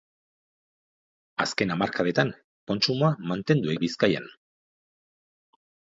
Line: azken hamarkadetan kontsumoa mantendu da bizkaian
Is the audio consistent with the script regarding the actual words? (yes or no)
yes